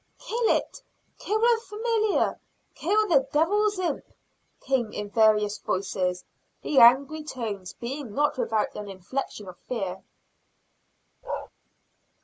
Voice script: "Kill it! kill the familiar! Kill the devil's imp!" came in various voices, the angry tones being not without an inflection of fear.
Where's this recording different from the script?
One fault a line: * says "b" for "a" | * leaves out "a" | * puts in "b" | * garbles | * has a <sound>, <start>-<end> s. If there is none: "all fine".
* has a bark, 11.2-11.5 s